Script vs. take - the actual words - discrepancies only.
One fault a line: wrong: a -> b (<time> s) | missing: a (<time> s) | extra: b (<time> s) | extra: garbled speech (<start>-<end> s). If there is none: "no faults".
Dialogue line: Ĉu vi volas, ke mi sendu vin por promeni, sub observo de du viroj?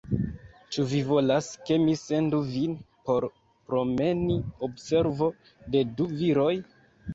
missing: sub (4.4 s)